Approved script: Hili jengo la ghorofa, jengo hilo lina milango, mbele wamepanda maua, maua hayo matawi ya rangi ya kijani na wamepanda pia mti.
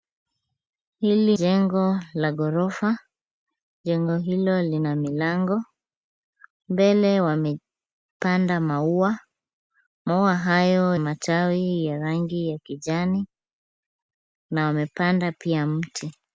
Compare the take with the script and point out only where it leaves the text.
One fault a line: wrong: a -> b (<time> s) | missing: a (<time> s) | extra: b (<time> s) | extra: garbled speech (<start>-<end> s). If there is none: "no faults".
no faults